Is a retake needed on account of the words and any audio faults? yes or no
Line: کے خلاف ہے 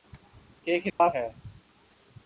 yes